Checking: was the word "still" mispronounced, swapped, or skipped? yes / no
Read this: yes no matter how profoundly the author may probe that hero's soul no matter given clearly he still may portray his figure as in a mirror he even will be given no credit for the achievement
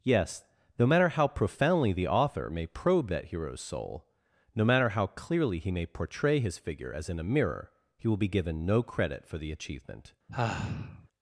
yes